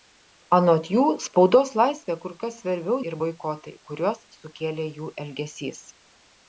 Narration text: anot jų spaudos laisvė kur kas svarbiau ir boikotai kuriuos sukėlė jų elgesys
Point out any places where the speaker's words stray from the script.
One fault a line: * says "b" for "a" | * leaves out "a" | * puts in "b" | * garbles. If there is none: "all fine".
all fine